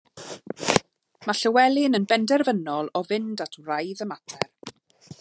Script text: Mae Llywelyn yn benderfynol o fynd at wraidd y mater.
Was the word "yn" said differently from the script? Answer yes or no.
no